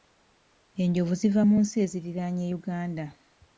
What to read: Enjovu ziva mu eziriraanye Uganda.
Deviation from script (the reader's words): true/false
true